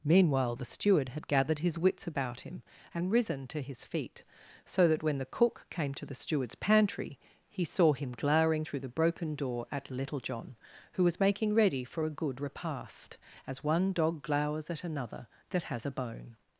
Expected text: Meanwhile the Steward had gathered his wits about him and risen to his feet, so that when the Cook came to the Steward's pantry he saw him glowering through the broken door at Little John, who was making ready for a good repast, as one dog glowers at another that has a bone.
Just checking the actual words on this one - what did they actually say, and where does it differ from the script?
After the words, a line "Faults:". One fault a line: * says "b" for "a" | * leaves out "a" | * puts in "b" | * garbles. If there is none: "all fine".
Meanwhile the Steward had gathered his wits about him and risen to his feet, so that when the Cook came to the Steward's pantry he saw him glowering through the broken door at Little John, who was making ready for a good repast, as one dog glowers at another that has a bone.
Faults:
all fine